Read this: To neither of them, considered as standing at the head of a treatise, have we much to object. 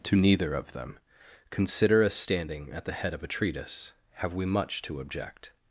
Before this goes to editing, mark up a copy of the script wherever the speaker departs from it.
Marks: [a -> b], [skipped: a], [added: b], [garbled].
To neither of them, [considered -> consider] as standing at the head of a treatise, have we much to object.